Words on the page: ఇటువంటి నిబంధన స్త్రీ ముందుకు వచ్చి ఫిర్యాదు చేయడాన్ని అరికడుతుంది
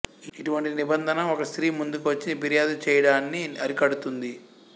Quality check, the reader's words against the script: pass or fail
fail